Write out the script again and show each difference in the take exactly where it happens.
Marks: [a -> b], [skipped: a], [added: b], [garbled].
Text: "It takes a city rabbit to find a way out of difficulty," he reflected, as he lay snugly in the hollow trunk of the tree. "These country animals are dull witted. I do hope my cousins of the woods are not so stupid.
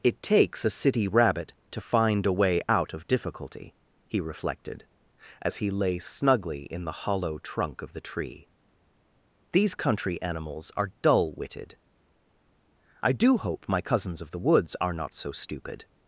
"It takes a city rabbit to find a way out of difficulty," he reflected, as he lay snugly in the hollow trunk of the tree. "These country animals are dull witted. I do hope my cousins of the woods are not so stupid.